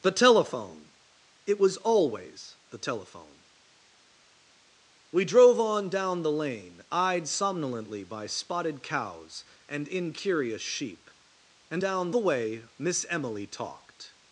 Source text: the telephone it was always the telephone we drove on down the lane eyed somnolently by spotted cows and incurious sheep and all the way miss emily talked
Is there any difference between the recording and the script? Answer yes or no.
yes